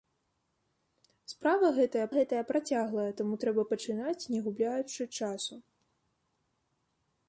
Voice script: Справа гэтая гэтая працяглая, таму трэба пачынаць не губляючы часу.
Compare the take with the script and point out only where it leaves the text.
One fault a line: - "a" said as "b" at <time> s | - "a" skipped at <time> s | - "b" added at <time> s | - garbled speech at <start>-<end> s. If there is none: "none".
none